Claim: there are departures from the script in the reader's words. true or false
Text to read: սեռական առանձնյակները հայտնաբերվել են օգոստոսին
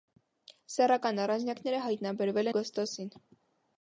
true